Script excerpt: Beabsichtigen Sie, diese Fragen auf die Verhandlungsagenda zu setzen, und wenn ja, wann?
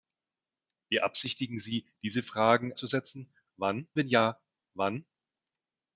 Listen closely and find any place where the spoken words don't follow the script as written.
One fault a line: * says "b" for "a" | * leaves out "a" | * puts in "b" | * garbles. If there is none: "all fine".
* leaves out "auf die Verhandlungsagenda"
* says "wann" for "und"